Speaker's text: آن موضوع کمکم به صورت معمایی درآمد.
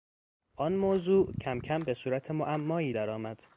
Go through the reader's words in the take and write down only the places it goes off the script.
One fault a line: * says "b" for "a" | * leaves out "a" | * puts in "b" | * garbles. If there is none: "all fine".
all fine